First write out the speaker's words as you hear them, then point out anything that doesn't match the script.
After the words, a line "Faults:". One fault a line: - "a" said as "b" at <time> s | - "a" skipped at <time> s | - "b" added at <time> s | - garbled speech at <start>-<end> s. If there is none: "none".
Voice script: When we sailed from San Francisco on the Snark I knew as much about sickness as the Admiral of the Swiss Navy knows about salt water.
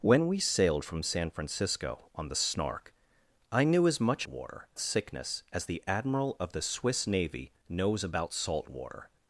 When we sailed from San Francisco on the Snark I knew as much water sickness as the Admiral of the Swiss Navy knows about salt water.
Faults:
- "about" said as "water" at 4.3 s